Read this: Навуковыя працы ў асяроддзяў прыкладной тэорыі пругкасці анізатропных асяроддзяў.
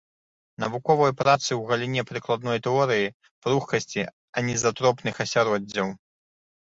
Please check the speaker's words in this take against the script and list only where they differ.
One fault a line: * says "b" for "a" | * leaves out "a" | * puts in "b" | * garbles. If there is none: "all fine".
* says "галіне" for "асяроддзяў"